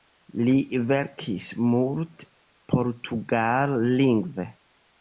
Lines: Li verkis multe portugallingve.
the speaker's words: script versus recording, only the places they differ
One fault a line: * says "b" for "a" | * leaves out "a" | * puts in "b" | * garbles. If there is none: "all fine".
all fine